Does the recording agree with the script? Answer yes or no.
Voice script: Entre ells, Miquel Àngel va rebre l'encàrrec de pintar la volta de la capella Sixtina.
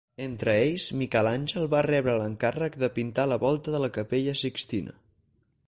yes